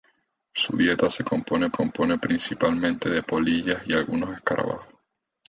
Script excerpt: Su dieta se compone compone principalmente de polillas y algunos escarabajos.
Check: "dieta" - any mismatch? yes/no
no